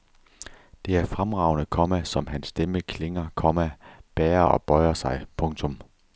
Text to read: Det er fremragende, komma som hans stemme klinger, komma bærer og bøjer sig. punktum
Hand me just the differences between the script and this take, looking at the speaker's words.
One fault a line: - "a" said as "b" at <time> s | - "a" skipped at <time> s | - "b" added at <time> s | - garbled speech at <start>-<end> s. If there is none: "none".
none